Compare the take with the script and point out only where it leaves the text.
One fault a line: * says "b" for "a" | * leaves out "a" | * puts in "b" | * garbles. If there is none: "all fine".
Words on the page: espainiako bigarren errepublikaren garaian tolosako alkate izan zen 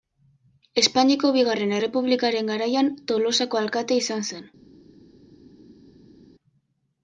all fine